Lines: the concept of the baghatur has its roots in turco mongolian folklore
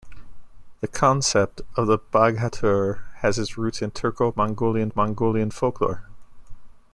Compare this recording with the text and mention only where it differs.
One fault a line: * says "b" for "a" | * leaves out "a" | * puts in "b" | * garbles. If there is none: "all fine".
* puts in "mongolian"